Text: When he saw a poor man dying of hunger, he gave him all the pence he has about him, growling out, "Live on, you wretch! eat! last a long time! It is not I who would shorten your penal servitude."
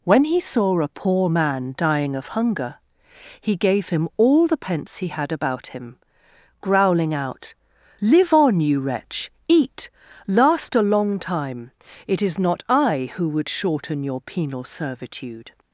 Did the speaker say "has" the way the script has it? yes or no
no